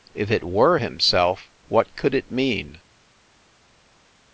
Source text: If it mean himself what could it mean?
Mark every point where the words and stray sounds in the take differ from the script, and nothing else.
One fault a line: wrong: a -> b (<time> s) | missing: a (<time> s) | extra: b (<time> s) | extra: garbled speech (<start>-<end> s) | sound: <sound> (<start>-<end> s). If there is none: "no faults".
wrong: mean -> were (0.4 s)